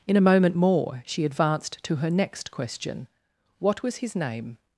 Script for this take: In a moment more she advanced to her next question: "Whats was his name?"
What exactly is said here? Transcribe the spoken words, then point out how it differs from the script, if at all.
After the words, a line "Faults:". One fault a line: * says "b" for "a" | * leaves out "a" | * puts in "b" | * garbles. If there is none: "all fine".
In a moment more she advanced to her next question: "What was his name?"
Faults:
* says "What" for "Whats"